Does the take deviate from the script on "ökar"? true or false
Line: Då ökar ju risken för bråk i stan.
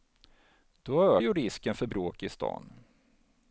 true